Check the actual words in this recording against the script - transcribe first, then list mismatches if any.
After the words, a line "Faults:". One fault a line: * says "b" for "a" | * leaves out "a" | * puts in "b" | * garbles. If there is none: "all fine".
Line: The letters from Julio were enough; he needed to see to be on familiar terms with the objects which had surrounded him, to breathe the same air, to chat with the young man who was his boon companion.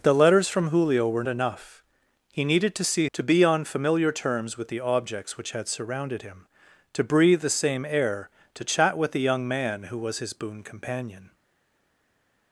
The letters from Julio were enough; he needed to see to be on familiar terms with the objects which had surrounded him, to breathe the same air, to chat with the young man who was his boon companion.
Faults:
all fine